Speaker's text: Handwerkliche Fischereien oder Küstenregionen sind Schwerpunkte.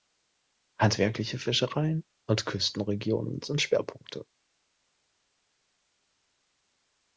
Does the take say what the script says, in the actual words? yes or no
no